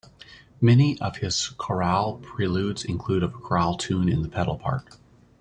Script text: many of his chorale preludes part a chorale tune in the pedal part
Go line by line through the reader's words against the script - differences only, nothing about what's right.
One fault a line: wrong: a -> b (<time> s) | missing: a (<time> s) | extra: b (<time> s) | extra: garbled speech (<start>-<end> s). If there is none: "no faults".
wrong: part -> include (2.8 s)